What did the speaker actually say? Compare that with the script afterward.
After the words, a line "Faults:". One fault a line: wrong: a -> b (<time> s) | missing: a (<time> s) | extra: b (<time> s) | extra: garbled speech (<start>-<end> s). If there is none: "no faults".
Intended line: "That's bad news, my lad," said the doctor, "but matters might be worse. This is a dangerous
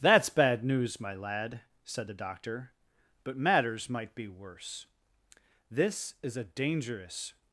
"That's bad news, my lad," said the doctor, "but matters might be worse. This is a dangerous
Faults:
no faults